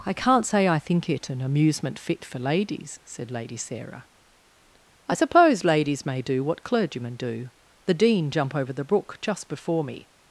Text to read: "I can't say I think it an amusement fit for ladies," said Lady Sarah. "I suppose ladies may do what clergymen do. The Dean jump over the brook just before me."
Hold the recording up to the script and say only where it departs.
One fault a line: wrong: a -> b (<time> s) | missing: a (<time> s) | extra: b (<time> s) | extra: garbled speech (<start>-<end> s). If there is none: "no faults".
no faults